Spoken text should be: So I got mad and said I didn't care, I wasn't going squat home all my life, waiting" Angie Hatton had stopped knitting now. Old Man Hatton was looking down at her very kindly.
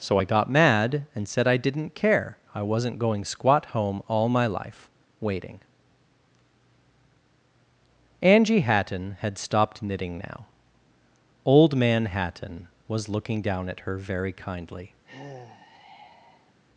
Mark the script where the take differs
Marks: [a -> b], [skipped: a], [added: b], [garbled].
So I got mad and said I didn't care, I wasn't going squat home all my life, waiting" Angie Hatton had stopped knitting now. Old Man Hatton was looking down at her very kindly.